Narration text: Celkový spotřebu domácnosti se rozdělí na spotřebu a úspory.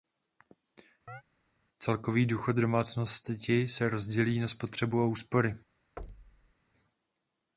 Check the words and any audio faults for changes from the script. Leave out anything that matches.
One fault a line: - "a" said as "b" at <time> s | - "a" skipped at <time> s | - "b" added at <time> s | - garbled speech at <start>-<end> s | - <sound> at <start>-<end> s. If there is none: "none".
- chirp at 1.1-1.2 s
- "spotřebu" said as "důchod" at 2.3 s
- thud at 6.0-6.5 s